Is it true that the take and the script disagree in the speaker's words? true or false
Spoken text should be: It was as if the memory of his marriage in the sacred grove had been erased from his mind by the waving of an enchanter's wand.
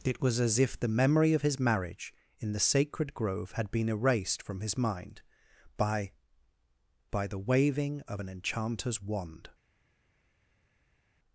true